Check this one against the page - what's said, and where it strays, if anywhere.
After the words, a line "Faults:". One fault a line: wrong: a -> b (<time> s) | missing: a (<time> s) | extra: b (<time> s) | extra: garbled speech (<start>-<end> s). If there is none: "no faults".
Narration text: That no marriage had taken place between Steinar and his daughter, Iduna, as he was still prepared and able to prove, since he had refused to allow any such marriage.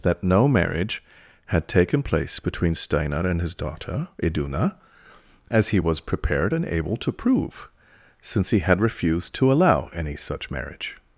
That no marriage had taken place between Steinar and his daughter, Iduna, as he was prepared and able to prove, since he had refused to allow any such marriage.
Faults:
missing: still (6.0 s)